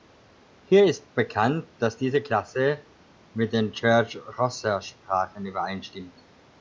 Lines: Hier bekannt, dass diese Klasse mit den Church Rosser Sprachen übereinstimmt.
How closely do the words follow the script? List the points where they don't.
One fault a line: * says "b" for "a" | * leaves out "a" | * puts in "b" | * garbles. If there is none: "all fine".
* puts in "ist"